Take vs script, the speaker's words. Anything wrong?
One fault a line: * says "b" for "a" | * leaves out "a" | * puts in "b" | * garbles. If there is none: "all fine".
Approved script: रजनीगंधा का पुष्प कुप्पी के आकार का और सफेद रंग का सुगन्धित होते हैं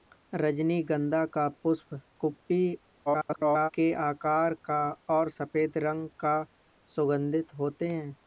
* garbles